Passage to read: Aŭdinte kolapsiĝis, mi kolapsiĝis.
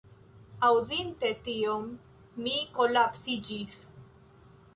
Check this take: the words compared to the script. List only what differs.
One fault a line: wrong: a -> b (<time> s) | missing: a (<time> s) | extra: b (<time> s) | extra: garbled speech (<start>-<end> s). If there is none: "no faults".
wrong: kolapsiĝis -> tion (1.5 s)